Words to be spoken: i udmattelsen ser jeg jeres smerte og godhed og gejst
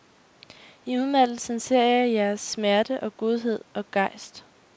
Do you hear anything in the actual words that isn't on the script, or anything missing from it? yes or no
no